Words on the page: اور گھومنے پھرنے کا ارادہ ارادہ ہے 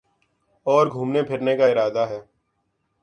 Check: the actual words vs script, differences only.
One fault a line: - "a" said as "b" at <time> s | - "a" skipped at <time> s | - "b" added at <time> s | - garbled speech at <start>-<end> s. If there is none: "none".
- "ارادہ" skipped at 2.1 s